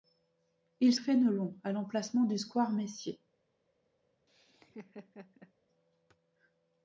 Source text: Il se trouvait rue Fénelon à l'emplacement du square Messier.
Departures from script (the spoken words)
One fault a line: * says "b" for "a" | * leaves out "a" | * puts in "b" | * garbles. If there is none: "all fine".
* leaves out "se trouvait rue"